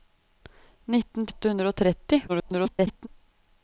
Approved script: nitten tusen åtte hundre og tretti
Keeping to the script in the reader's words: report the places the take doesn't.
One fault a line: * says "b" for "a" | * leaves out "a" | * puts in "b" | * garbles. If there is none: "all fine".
* leaves out "tusen"
* garbles